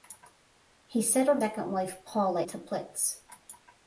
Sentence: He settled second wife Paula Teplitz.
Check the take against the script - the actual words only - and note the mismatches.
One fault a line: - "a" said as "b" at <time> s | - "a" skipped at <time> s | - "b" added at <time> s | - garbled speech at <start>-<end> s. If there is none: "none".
none